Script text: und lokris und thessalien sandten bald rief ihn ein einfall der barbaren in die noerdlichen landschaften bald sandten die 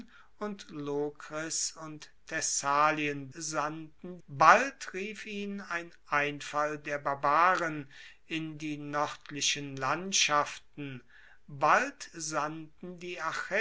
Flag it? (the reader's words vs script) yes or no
no